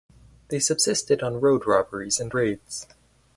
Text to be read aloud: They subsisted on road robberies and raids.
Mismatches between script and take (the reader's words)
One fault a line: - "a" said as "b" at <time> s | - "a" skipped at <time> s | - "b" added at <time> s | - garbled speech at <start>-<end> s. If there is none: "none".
none